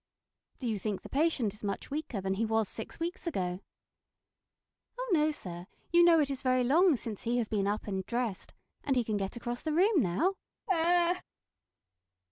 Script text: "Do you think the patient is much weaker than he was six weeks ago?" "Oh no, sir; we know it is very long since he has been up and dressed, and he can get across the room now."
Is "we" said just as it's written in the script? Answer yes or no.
no